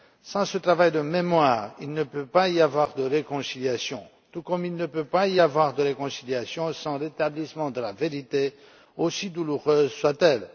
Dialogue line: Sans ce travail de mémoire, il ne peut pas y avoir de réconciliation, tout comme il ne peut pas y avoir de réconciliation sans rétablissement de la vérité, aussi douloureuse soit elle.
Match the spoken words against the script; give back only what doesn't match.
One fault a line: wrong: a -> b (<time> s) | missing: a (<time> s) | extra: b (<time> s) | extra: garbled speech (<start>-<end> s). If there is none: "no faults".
no faults